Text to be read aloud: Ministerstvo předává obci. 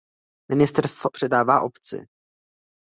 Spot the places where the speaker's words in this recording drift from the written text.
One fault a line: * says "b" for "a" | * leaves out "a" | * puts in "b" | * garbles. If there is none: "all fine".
all fine